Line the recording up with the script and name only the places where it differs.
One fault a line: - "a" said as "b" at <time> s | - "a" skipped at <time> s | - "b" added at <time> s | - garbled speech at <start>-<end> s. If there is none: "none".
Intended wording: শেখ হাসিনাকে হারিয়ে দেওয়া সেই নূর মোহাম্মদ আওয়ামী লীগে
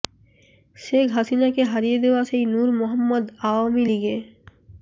none